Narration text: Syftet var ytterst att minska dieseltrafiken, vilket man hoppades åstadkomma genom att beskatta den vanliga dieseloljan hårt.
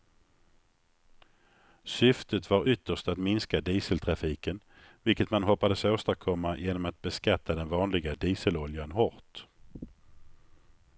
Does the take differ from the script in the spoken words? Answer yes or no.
no